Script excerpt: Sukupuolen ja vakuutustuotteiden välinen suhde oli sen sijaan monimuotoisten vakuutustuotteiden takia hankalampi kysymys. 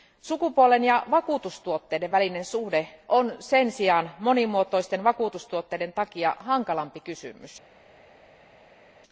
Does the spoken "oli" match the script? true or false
false